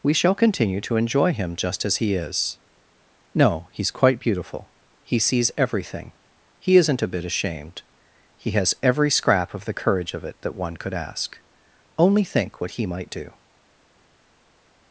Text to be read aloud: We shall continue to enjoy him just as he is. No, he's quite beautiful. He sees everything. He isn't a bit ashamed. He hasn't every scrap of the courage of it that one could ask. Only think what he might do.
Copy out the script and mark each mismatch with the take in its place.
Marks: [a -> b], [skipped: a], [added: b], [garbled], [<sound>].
We shall continue to enjoy him just as he is. No, he's quite beautiful. He sees everything. He isn't a bit ashamed. He [hasn't -> has] every scrap of the courage of it that one could ask. Only think what he might do.